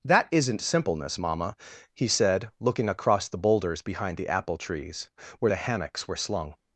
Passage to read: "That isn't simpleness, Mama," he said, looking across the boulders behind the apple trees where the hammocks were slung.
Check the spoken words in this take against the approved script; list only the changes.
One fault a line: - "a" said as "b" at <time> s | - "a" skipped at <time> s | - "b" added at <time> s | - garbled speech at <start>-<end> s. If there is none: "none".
none